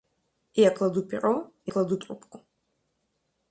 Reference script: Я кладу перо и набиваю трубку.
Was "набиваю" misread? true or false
true